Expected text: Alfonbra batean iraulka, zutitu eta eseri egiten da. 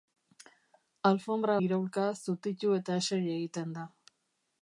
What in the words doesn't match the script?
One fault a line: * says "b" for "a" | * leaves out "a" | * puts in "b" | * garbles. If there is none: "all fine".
* leaves out "batean"